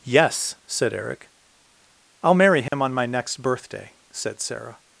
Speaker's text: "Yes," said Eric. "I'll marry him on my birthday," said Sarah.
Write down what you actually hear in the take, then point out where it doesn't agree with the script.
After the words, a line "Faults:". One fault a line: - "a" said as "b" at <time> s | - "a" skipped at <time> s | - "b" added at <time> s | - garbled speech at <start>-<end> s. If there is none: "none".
"Yes," said Eric. "I'll marry him on my next birthday," said Sarah.
Faults:
- "next" added at 3.0 s